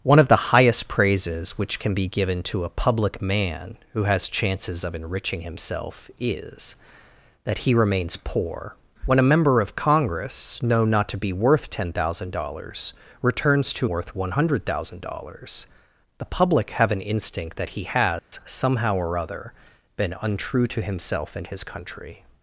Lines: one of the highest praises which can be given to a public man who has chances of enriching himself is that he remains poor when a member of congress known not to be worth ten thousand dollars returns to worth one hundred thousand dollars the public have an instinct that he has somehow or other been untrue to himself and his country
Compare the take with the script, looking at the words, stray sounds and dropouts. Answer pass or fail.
fail